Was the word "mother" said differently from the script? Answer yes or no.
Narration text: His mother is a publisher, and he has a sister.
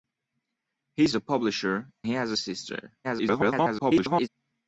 yes